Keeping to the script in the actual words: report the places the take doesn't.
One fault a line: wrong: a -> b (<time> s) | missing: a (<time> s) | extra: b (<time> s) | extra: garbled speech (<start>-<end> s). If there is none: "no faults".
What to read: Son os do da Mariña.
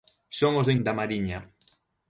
no faults